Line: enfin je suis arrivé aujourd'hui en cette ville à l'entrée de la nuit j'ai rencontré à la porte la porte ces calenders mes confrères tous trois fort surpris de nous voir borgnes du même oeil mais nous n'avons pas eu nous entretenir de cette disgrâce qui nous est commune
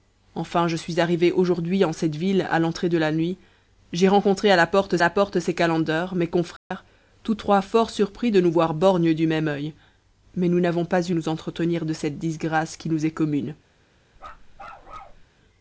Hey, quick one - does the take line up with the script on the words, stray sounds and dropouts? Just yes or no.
no